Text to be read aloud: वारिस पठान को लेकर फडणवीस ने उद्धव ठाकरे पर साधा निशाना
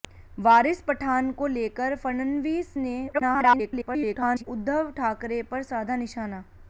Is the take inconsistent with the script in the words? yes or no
yes